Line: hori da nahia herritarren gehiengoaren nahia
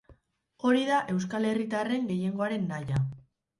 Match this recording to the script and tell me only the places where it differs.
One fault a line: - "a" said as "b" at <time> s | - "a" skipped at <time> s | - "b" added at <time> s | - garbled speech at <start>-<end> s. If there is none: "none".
- "nahia" said as "euskal" at 1.2 s